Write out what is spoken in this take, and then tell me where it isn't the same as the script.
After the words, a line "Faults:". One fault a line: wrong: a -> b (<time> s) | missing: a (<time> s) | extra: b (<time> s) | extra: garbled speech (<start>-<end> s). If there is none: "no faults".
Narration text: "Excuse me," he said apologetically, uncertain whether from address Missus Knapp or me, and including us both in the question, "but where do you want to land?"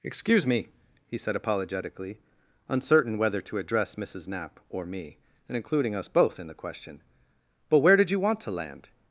"Excuse me," he said apologetically, uncertain whether to address Missus Knapp or me, and including us both in the question, "but where did you want to land?"
Faults:
wrong: from -> to (3.4 s)
wrong: do -> did (8.0 s)